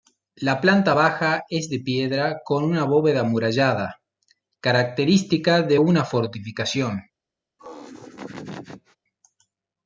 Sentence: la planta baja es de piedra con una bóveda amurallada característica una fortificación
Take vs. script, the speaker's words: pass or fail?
fail